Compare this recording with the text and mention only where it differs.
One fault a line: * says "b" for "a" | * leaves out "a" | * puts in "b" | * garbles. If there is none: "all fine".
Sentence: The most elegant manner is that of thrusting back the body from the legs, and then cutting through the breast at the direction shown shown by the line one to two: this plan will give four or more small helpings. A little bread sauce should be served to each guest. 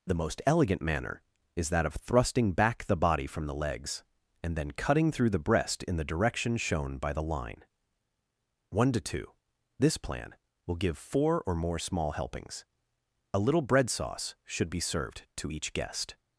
* says "in" for "at"
* leaves out "shown"